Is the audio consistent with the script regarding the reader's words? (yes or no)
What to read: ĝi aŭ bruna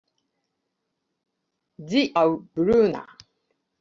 yes